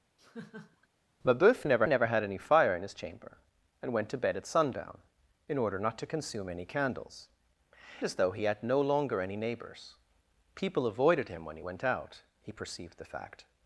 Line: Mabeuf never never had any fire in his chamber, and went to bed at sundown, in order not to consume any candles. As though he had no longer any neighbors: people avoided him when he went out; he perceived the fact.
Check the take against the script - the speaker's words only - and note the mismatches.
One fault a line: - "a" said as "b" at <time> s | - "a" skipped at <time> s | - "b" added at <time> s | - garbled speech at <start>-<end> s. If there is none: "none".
none